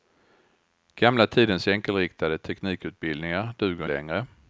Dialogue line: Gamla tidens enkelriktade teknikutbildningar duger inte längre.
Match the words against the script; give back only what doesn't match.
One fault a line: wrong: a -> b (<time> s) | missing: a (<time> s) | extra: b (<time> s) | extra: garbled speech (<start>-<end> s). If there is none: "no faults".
missing: inte (3.9 s)